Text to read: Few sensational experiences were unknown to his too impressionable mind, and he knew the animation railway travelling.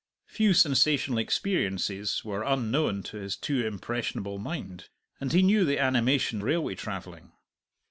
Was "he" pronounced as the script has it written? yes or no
yes